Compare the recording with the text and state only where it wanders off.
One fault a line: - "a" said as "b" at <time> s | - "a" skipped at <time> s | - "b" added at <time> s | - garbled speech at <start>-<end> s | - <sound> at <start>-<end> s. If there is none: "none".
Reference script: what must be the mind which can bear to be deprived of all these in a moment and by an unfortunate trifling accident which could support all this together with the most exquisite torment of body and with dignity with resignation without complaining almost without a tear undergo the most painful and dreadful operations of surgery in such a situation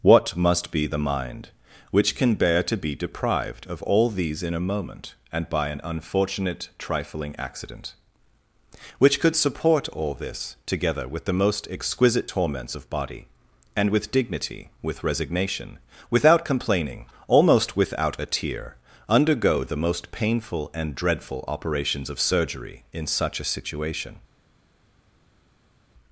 - "torment" said as "torments" at 12.3 s